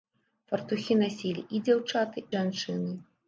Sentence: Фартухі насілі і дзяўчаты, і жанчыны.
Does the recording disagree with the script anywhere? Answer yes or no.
yes